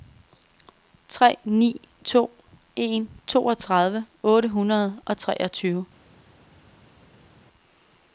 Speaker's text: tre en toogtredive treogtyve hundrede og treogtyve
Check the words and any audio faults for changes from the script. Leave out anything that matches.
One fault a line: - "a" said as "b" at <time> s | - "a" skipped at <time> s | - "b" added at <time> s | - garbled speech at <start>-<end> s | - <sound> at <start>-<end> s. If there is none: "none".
- "ni to" added at 1.4 s
- "treogtyve" said as "otte" at 4.2 s